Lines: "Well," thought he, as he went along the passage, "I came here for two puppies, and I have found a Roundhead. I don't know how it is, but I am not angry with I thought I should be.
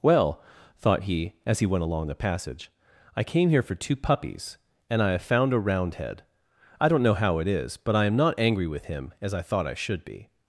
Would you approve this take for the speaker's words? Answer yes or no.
no